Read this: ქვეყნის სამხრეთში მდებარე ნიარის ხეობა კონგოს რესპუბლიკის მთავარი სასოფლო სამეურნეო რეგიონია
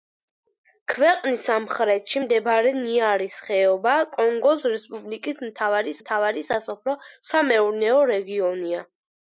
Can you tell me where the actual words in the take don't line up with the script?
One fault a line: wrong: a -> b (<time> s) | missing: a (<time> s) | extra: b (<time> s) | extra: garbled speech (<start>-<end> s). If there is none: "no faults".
extra: მთავარი (6.0 s)